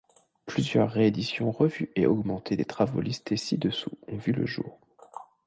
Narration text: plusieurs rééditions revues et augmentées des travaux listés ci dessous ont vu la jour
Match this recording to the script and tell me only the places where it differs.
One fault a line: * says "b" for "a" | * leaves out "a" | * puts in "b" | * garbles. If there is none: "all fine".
* says "le" for "la"